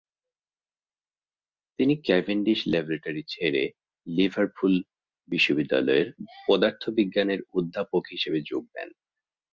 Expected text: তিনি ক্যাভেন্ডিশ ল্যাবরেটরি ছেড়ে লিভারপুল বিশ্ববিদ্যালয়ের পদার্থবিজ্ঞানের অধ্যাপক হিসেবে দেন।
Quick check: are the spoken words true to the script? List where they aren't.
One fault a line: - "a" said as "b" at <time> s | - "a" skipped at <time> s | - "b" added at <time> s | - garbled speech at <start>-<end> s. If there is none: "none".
- "যোগ" added at 8.4 s